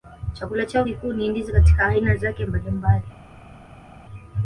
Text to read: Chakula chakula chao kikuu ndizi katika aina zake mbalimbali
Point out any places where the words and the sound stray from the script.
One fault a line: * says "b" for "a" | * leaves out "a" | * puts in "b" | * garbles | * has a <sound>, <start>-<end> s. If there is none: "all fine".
* leaves out "chakula"
* puts in "ni"